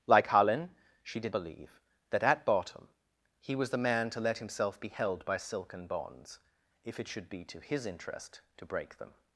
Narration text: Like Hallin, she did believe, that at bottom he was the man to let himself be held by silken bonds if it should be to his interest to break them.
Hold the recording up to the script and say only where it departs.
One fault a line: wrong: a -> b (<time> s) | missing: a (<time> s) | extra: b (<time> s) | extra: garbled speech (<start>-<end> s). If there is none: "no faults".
no faults